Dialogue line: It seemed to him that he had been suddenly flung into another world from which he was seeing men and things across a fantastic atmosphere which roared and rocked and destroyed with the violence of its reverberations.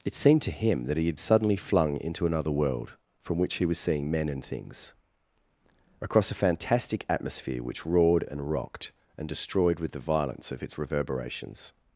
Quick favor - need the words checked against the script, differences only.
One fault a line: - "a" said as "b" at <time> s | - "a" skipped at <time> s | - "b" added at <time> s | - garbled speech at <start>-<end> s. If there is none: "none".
- "been" skipped at 1.2 s